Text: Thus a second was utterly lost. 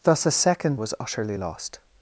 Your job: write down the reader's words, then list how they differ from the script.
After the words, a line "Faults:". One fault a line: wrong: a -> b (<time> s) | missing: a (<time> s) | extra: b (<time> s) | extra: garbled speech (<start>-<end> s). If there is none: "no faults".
Thus a second was utterly lost.
Faults:
no faults